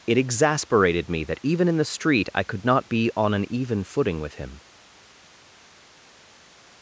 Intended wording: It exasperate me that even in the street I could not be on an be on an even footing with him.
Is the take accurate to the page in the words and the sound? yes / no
no